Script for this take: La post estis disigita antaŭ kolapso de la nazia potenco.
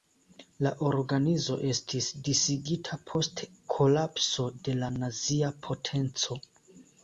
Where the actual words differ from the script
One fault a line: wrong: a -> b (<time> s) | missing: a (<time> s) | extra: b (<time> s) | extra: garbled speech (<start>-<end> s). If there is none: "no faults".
wrong: post -> organizo (0.9 s)
wrong: antaŭ -> post (3.1 s)